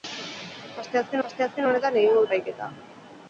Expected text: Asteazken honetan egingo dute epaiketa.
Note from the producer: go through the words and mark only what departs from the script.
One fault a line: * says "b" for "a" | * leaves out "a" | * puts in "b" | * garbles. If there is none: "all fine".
* puts in "asteazken"
* leaves out "dute"